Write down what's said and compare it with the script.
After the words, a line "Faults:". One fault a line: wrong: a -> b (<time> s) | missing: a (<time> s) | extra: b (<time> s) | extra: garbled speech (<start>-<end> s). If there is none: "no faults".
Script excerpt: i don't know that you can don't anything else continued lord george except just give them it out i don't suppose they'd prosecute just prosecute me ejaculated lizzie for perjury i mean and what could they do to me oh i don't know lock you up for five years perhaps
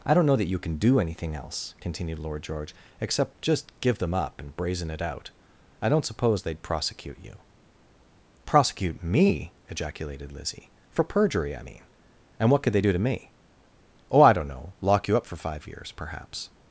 i don't know that you can do anything else continued lord george except just give them up and brazen it out i don't suppose they'd prosecute you prosecute me ejaculated lizzie for perjury i mean and what could they do to me oh i don't know lock you up for five years perhaps
Faults:
wrong: don't -> do (0.8 s)
extra: up and brazen (4.2 s)
wrong: just -> you (7.2 s)